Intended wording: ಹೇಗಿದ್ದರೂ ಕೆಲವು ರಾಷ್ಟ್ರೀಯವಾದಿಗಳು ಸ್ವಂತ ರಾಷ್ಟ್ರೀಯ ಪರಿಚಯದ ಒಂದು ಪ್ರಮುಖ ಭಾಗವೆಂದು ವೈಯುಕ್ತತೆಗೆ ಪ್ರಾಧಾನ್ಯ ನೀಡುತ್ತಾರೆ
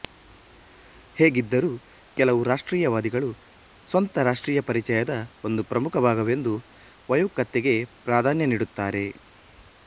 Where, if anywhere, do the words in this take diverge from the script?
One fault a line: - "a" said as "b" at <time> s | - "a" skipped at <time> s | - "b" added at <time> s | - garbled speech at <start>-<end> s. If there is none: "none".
none